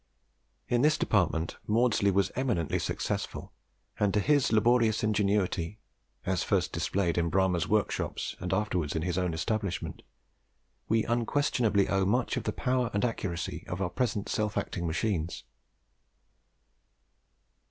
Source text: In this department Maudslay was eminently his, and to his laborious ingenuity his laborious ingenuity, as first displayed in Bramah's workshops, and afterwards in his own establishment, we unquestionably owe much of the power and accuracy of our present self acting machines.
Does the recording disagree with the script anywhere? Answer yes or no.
yes